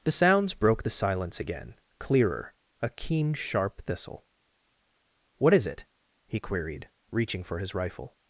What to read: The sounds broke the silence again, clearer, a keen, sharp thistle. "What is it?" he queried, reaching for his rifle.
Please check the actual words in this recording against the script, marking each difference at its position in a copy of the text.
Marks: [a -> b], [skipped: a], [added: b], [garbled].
The sounds broke the silence again, clearer, a keen, sharp thistle. "What is it?" he queried, reaching for his rifle.